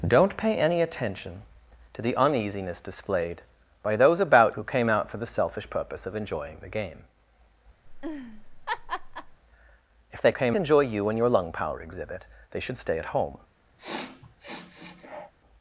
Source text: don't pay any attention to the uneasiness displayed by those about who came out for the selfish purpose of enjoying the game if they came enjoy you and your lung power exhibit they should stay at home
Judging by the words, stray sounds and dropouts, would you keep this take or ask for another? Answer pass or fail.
fail